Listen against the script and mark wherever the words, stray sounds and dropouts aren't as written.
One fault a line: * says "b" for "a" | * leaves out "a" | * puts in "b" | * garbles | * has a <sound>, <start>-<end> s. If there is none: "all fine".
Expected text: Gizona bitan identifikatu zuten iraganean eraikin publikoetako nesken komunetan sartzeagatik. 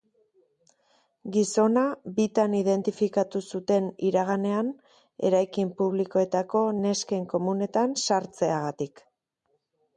all fine